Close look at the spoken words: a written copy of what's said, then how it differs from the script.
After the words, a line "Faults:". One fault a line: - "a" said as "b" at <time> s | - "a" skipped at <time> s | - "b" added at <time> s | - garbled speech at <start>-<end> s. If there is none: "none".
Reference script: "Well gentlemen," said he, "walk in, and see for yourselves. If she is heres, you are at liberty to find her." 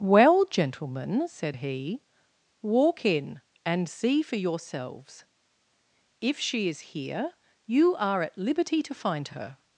"Well gentlemen," said he, "walk in, and see for yourselves. If she is here, you are at liberty to find her."
Faults:
- "heres" said as "here" at 6.9 s